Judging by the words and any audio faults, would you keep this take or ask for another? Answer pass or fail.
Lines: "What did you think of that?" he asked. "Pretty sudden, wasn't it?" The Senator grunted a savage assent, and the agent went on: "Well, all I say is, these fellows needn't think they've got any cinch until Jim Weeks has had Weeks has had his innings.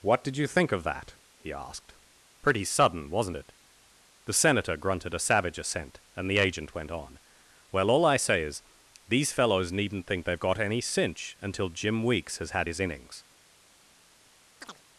fail